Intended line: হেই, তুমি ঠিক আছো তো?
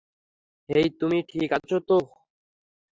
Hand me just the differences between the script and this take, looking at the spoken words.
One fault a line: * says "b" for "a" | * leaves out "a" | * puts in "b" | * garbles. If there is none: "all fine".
all fine